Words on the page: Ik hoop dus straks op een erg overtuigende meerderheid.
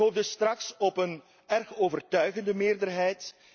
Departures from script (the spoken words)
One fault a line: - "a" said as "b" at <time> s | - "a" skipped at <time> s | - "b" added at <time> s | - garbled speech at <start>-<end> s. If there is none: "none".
none